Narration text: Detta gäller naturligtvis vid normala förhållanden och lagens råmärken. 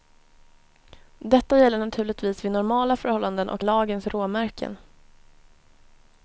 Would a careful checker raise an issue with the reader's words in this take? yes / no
no